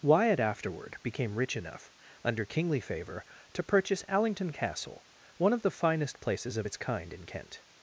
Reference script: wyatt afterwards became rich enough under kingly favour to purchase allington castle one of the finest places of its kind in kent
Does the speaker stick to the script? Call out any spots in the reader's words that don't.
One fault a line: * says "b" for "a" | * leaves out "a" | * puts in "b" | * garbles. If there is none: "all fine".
* says "afterward" for "afterwards"